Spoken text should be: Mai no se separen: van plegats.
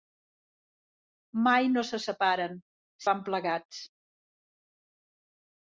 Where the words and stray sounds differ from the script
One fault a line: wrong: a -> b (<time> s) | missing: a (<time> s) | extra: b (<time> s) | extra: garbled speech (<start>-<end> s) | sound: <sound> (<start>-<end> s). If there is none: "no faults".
no faults